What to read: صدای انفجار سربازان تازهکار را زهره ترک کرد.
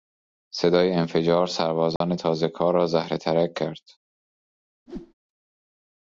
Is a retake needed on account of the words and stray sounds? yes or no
yes